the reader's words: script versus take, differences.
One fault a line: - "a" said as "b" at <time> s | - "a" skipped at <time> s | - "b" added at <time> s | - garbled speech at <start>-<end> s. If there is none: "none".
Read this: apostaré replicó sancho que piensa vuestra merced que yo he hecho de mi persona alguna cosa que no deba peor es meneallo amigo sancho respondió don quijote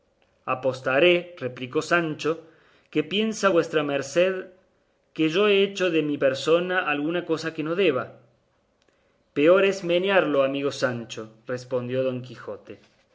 none